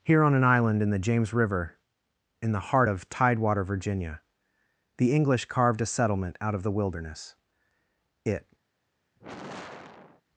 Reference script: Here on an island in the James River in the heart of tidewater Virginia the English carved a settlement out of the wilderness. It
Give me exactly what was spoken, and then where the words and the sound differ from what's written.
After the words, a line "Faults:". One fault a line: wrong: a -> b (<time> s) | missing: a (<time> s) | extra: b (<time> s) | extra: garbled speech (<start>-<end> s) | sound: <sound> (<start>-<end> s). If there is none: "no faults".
Here on an island in the James River in the heart of tidewater Virginia the English carved a settlement out of the wilderness. It
Faults:
sound: sigh (9.2-10.2 s)